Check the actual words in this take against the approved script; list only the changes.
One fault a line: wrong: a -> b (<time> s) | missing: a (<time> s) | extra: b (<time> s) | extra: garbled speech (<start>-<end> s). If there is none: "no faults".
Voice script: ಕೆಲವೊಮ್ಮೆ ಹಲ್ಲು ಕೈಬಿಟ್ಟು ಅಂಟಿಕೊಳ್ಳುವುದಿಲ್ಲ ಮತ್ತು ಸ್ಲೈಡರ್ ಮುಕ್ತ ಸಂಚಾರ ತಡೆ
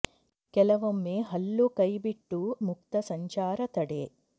missing: ಅಂಟಿಕೊಳ್ಳುವುದಿಲ್ಲ ಮತ್ತು ಸ್ಲೈಡರ್ (2.4 s)